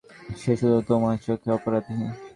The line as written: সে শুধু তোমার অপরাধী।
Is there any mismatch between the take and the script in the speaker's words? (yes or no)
yes